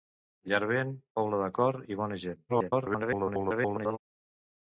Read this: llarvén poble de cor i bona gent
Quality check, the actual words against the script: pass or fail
fail